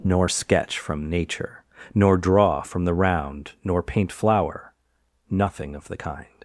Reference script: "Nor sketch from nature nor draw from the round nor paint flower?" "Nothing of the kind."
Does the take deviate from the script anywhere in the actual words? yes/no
no